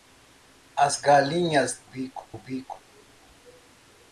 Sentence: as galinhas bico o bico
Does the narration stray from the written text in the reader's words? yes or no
no